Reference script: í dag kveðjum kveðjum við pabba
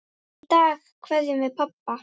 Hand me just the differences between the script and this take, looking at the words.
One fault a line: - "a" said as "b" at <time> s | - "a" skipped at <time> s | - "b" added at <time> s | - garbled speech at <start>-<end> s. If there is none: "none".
- "kveðjum" skipped at 1.4 s